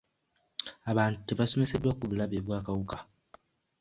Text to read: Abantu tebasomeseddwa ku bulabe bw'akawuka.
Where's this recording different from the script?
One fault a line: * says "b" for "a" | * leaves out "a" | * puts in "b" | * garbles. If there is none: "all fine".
all fine